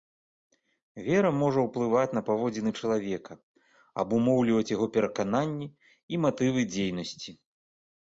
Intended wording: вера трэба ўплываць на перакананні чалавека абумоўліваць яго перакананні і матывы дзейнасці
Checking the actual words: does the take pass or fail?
fail